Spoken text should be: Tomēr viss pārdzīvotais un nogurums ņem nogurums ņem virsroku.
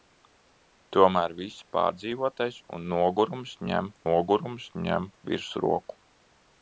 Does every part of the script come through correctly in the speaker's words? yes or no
yes